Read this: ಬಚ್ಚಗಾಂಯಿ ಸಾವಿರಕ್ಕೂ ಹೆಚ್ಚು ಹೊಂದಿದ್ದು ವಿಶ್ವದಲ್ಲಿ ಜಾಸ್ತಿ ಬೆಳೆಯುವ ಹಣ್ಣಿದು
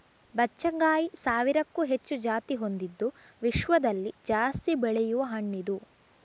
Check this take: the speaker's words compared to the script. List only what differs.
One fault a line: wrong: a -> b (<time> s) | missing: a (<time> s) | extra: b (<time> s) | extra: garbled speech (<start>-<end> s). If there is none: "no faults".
extra: ಜಾತಿ (2.2 s)